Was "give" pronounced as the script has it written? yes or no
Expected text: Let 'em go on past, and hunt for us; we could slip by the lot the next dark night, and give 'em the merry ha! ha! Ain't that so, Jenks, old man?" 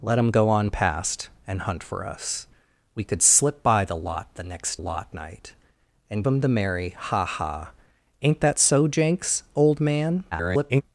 no